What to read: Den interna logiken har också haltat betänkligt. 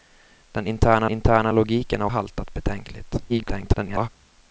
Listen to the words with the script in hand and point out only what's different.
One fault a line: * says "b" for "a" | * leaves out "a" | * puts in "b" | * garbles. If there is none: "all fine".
* puts in "interna"
* leaves out "också"
* garbles